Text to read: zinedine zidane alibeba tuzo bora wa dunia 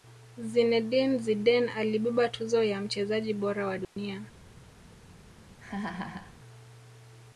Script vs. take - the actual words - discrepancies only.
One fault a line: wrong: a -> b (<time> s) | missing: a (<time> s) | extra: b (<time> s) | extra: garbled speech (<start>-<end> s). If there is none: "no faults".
extra: ya mchezaji (2.6 s)